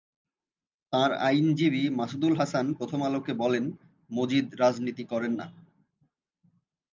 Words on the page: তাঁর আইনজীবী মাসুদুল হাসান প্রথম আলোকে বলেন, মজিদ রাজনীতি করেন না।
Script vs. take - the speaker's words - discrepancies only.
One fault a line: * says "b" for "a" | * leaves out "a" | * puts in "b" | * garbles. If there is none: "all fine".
all fine